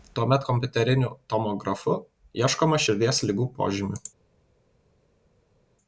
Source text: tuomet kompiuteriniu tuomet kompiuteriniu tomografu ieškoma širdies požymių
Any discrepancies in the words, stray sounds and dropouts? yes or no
yes